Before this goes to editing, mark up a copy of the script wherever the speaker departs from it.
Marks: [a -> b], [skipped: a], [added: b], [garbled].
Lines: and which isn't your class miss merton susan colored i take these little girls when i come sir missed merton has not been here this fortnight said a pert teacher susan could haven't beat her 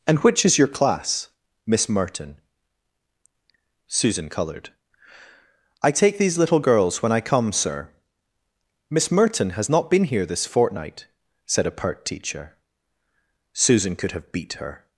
and which [isn't -> is] your class miss merton susan colored i take these little girls when i come sir [missed -> miss] merton has not been here this fortnight said a pert teacher susan could [haven't -> have] beat her